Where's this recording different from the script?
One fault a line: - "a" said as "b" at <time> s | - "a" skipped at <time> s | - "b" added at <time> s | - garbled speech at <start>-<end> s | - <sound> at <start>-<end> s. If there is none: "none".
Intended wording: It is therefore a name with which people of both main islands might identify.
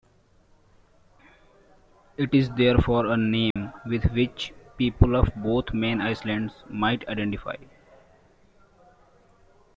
- dropout at 3.5-3.6 s